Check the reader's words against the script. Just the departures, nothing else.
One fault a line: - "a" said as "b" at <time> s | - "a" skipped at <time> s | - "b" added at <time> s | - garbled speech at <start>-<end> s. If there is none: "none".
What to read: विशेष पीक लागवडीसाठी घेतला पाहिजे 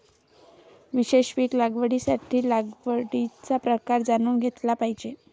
- "लागवडीचा प्रकार जाणून" added at 2.5 s